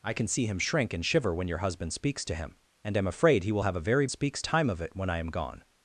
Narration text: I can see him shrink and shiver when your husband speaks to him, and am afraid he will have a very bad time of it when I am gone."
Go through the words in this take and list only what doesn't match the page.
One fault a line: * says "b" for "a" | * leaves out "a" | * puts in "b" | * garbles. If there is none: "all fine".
* says "speaks" for "bad"